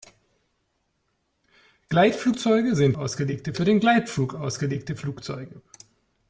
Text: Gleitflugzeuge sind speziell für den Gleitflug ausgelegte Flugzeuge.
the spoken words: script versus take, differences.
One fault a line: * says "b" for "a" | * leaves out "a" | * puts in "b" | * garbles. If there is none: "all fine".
* says "ausgelegte" for "speziell"